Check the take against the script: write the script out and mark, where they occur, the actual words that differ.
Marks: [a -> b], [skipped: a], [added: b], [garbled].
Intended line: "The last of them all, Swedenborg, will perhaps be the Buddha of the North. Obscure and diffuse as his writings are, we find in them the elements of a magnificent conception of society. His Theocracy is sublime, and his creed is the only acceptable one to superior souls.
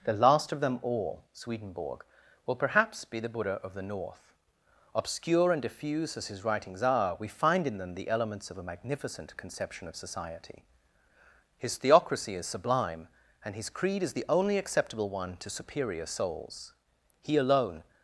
"The last of them all, Swedenborg, will perhaps be the Buddha of the North. Obscure and diffuse as his writings are, we find in them the elements of a magnificent conception of society. His Theocracy is sublime, and his creed is the only acceptable one to superior souls. [added: He alone]